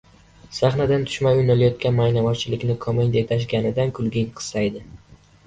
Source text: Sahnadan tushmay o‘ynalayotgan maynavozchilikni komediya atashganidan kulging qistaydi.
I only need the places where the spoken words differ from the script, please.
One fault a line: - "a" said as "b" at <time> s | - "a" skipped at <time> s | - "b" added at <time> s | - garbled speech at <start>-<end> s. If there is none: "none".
none